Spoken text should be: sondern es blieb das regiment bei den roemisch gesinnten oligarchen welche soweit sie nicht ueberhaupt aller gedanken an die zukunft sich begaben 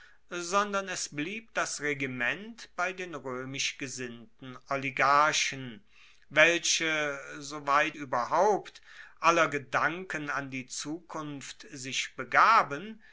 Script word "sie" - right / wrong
wrong